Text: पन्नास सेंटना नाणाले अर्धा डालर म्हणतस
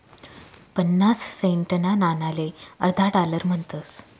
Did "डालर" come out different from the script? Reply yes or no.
no